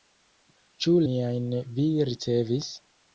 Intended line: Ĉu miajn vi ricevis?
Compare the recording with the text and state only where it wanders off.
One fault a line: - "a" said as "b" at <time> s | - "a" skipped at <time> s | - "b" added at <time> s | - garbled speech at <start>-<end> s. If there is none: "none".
none